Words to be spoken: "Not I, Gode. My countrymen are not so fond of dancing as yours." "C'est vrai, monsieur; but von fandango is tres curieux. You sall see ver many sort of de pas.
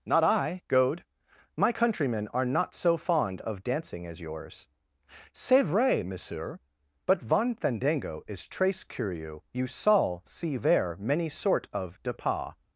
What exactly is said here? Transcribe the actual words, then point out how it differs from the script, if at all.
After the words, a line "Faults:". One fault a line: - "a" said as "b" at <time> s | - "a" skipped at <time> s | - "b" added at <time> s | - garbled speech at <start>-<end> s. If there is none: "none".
"Not I, Gode. My countrymen are not so fond of dancing as yours." "C'est vrai, monsieur; but von fandango is tres curieux. You sall see ver many sort of de pas.
Faults:
none